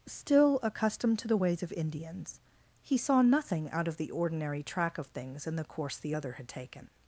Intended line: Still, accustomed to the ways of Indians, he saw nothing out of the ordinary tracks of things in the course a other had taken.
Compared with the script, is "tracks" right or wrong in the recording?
wrong